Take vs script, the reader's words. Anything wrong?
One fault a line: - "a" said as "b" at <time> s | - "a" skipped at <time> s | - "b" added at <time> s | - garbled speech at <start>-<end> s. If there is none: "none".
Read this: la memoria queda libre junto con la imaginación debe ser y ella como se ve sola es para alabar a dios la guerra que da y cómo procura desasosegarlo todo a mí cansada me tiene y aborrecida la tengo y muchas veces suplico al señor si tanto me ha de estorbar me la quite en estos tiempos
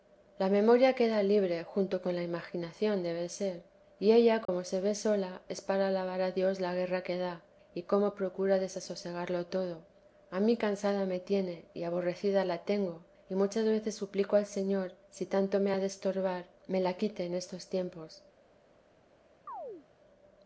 none